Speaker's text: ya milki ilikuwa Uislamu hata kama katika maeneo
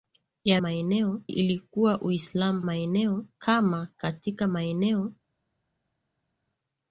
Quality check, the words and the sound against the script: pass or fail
fail